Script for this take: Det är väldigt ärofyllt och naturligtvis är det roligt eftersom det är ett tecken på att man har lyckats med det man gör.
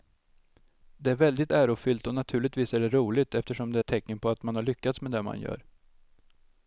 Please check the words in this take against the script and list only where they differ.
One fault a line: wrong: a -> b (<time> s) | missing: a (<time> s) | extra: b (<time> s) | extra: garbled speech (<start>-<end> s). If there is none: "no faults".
no faults